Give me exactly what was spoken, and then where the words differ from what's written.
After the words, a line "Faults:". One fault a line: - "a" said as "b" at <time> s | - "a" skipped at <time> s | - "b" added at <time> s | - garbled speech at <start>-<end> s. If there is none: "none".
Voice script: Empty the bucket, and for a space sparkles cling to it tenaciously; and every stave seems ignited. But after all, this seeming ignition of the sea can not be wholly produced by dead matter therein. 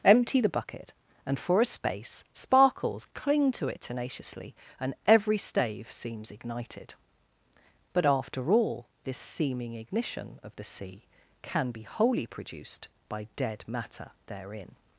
Empty the bucket, and for a space sparkles cling to it tenaciously; and every stave seems ignited. But after all, this seeming ignition of the sea can be wholly produced by dead matter therein.
Faults:
- "not" skipped at 11.7 s